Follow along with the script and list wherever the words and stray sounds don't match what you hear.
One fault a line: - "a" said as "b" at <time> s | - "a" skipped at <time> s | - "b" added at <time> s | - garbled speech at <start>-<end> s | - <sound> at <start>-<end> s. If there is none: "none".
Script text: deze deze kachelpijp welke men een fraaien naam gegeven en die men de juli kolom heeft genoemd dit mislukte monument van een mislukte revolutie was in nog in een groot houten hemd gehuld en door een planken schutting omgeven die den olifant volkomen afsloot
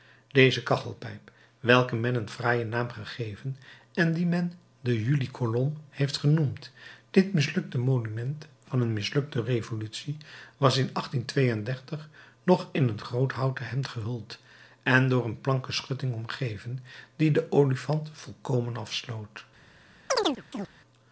- "deze" skipped at 0.6 s
- chirp at 20.1-20.7 s